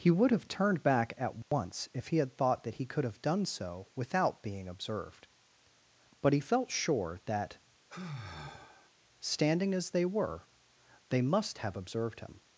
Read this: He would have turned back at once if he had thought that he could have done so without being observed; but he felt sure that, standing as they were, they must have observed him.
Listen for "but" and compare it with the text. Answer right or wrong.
right